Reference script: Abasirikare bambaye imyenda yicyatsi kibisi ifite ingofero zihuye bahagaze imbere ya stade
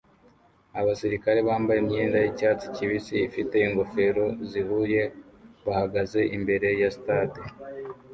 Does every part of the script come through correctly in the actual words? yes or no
yes